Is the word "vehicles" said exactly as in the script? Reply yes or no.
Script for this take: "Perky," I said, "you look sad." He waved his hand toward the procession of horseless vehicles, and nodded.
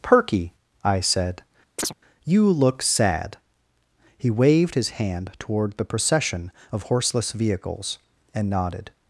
yes